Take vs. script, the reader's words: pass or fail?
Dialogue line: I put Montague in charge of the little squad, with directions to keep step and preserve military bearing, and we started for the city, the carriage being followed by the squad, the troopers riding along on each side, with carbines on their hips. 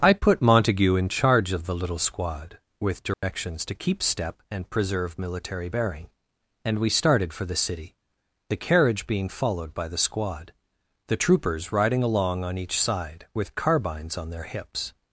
pass